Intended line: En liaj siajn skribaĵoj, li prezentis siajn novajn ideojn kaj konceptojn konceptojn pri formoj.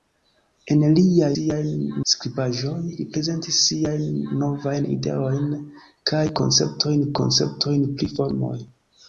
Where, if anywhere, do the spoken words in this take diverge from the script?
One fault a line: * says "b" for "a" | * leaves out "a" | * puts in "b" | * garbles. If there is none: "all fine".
all fine